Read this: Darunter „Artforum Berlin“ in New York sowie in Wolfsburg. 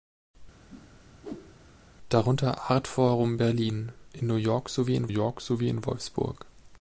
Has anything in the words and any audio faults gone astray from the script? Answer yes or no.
yes